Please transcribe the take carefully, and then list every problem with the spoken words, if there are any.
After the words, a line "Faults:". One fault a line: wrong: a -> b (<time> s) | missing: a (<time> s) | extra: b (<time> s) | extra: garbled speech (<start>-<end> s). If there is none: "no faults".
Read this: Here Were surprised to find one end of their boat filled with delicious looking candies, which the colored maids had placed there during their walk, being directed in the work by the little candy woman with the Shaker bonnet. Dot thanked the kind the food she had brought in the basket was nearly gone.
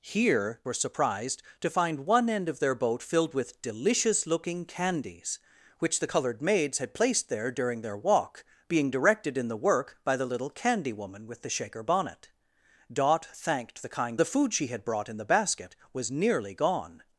Here Were surprised to find one end of their boat filled with delicious looking candies, which the colored maids had placed there during their walk, being directed in the work by the little candy woman with the Shaker bonnet. Dot thanked the kind the food she had brought in the basket was nearly gone.
Faults:
no faults